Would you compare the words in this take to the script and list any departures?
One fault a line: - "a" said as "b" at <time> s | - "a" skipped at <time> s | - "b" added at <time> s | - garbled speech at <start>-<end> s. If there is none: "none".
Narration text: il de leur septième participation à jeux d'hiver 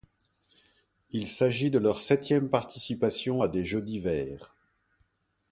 - "s'agit" added at 1.3 s
- "des" added at 3.5 s